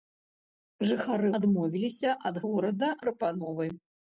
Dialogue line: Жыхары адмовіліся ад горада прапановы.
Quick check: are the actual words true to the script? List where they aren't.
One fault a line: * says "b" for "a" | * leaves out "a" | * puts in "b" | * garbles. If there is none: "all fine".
all fine